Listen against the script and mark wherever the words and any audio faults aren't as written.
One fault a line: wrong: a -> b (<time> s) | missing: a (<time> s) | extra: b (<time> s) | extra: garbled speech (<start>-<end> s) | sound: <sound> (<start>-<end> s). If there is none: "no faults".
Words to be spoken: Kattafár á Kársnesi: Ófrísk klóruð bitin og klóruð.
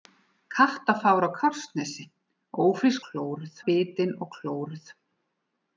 no faults